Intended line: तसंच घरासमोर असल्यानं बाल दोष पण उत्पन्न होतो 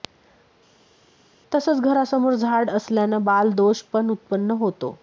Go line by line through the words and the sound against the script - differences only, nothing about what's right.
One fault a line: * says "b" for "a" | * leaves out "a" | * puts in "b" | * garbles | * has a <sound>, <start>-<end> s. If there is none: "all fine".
* puts in "झाड"